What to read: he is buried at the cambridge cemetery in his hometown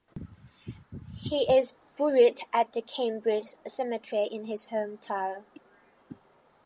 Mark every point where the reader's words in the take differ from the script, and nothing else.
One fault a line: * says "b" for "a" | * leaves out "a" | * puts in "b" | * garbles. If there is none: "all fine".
all fine